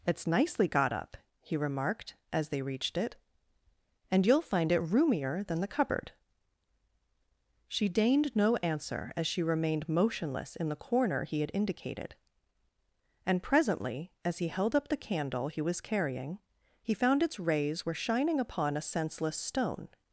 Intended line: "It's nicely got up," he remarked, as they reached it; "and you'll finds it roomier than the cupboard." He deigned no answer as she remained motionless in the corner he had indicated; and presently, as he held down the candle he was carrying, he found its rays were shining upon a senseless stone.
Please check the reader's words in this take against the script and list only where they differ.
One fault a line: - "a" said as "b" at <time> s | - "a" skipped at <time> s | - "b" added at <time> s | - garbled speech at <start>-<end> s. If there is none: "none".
- "finds" said as "find" at 4.4 s
- "He" said as "She" at 7.7 s
- "down" said as "up" at 14.7 s